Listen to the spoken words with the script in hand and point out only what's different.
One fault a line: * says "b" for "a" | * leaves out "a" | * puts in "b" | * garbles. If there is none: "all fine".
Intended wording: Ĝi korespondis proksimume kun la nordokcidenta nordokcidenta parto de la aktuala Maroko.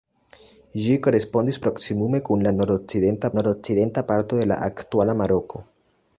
all fine